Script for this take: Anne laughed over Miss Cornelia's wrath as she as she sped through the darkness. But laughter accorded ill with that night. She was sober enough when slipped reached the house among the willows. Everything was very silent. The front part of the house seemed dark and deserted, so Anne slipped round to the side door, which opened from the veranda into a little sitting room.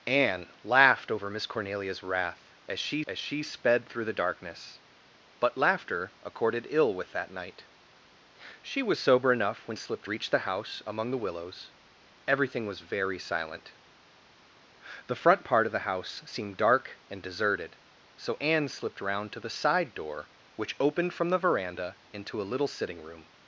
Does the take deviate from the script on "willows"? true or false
false